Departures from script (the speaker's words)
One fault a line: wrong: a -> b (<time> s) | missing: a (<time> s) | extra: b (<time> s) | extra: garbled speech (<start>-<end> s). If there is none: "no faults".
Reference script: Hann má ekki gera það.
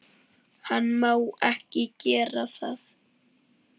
no faults